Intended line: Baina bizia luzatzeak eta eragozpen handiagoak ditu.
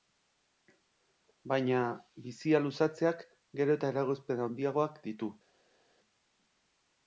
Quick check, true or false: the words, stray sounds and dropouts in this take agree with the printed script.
false